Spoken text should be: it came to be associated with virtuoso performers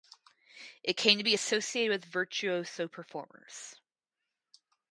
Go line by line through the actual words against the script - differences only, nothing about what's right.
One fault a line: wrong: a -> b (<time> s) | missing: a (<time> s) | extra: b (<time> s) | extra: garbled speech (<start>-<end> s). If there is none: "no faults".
no faults